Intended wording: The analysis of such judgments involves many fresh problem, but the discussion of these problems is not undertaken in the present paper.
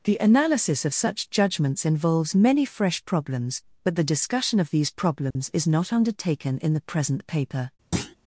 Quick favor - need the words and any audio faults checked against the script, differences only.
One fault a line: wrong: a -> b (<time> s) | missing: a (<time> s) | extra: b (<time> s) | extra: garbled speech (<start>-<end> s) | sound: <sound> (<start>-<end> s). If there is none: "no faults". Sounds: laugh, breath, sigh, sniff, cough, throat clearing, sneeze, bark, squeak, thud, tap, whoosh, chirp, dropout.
wrong: problem -> problems (3.0 s)
sound: dropout (5.3-5.4 s)
sound: thud (7.9-8.2 s)